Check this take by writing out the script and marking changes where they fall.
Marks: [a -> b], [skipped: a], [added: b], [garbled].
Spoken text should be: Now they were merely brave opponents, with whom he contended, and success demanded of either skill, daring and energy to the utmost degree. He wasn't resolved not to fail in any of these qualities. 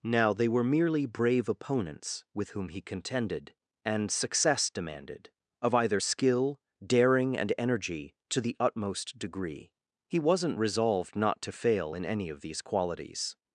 Now they were merely brave opponents, with whom he contended, and success demanded of either skill, daring and energy to the utmost degree. He wasn't resolved not to fail in any of these qualities.